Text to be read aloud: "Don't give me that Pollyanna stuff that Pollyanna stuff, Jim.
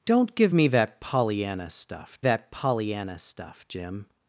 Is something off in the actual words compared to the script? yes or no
no